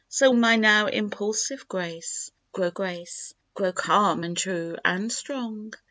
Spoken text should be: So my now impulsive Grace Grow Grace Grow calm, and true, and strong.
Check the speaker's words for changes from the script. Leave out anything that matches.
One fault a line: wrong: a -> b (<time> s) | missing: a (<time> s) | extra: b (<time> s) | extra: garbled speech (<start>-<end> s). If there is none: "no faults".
no faults